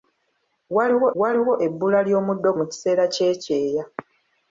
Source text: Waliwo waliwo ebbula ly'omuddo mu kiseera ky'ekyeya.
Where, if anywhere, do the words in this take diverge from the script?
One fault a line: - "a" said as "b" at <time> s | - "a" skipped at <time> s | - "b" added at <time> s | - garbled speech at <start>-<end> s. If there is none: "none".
none